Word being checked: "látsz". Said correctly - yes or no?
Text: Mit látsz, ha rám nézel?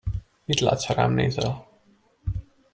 yes